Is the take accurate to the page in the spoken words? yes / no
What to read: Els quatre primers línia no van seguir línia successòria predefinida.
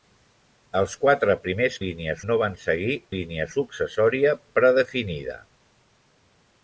yes